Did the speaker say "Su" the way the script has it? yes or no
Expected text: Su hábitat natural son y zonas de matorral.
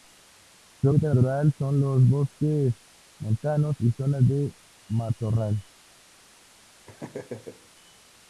yes